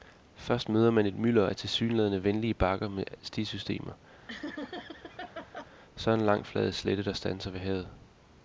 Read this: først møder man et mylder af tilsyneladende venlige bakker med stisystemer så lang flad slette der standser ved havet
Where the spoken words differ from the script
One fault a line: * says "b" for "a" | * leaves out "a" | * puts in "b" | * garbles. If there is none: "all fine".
* puts in "en"